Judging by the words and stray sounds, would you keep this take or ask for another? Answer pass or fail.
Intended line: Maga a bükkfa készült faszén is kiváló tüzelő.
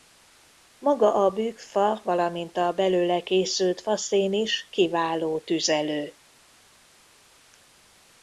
fail